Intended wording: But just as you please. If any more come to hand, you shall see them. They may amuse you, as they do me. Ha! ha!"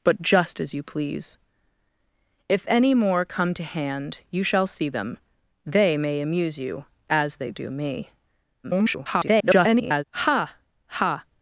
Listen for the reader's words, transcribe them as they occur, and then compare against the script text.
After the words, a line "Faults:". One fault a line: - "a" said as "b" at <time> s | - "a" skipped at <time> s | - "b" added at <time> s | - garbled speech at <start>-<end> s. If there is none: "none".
But just as you please. If any more come to hand, you shall see them. They may amuse you, as they do me. [garbled] Ha! ha!"
Faults:
- garbled speech at 8.6-10.0 s